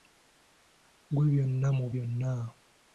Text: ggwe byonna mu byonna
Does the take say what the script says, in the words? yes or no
yes